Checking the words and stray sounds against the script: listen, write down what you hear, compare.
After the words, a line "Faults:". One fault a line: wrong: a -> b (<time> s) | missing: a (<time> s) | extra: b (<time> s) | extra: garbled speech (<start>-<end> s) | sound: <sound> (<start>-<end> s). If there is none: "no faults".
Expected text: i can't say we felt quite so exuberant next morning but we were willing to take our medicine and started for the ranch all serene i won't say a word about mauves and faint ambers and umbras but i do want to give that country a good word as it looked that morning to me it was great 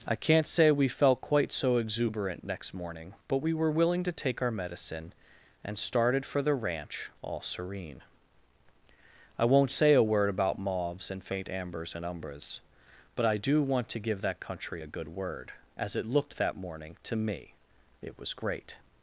i can't say we felt quite so exuberant next morning but we were willing to take our medicine and started for the ranch all serene i won't say a word about mauves and faint ambers and umbras but i do want to give that country a good word as it looked that morning to me it was great
Faults:
no faults